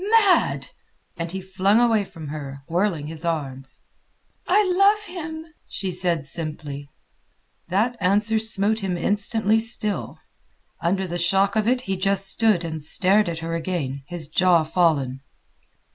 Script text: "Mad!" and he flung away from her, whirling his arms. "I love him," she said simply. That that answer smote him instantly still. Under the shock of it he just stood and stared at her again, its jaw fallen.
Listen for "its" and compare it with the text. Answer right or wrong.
wrong